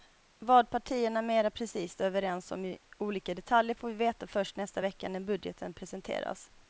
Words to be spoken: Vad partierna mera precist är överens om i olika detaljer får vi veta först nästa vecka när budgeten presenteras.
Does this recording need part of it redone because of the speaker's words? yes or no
no